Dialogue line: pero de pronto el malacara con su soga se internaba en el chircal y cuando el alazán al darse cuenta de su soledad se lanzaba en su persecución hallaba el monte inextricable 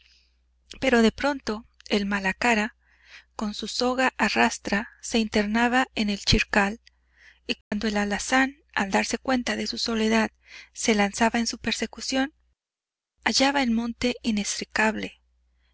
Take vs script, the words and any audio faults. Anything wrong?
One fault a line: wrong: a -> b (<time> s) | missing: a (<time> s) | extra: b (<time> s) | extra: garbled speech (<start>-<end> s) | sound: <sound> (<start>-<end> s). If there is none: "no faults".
extra: a rastra (4.2 s)
sound: dropout (7.6-7.7 s)